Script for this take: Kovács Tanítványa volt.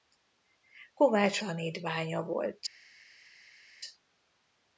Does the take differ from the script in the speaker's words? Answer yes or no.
no